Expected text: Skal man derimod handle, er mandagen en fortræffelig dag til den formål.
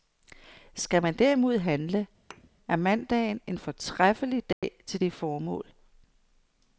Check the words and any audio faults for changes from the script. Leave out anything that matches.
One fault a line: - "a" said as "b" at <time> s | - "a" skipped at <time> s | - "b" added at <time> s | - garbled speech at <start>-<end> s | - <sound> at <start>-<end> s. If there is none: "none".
- thud at 2.3-2.5 s
- dropout at 4.5-4.6 s
- "den" said as "det" at 5.0 s